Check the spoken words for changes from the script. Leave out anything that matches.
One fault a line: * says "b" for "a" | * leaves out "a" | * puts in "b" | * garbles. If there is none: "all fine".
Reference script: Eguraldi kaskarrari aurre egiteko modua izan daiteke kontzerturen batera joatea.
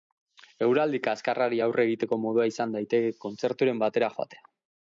all fine